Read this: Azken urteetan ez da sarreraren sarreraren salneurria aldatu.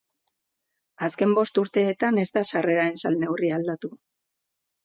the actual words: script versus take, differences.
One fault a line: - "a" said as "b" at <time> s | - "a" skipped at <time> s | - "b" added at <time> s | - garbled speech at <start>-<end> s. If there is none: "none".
- "bost" added at 1.4 s
- "sarreraren" skipped at 3.0 s